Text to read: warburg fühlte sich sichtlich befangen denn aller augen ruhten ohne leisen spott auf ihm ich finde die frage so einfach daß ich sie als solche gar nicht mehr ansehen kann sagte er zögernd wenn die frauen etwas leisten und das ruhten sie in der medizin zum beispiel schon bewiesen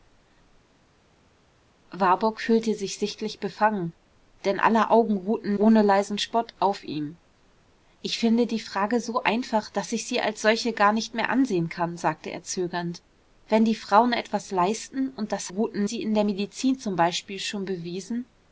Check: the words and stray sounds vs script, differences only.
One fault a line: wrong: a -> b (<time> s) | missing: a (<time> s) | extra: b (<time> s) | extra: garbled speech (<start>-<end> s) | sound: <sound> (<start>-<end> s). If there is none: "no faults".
no faults